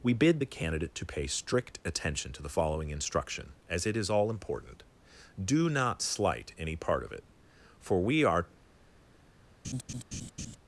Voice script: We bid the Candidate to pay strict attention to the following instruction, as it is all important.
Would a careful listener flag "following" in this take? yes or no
no